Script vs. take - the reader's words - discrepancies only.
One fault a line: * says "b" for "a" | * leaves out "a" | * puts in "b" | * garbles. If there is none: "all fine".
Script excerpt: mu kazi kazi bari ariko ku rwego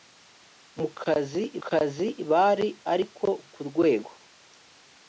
all fine